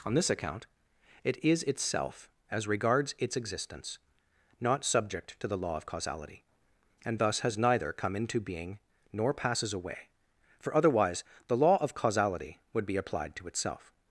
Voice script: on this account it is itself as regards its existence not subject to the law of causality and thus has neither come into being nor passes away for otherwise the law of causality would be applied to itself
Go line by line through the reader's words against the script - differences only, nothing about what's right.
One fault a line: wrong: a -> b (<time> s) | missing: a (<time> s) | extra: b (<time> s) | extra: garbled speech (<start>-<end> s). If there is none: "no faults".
no faults